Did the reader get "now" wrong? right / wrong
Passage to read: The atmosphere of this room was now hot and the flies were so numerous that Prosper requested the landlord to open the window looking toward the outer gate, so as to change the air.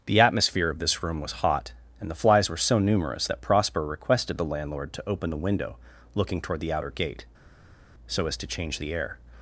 wrong